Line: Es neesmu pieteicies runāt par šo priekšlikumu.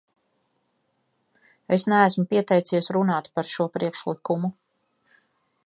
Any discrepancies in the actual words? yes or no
no